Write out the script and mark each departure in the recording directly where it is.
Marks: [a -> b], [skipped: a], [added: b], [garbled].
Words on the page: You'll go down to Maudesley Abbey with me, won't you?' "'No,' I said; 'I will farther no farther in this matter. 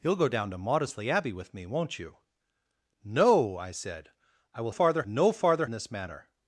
You'll go down to Maudesley Abbey with me, won't you?' "'No,' I said; 'I will farther no farther in this matter.